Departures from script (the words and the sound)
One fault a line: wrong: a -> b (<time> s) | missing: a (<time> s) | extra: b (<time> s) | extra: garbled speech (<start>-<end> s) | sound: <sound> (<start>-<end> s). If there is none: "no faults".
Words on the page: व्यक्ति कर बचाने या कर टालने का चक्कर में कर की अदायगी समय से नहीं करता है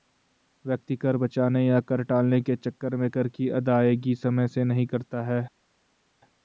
wrong: का -> के (2.4 s)